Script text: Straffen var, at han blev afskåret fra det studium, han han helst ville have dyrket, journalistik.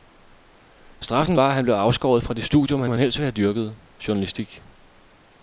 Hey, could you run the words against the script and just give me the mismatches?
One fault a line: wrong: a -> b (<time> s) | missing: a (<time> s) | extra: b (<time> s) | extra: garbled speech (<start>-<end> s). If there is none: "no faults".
no faults